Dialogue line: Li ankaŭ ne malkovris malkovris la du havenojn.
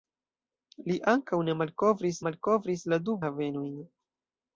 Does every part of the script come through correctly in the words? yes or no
yes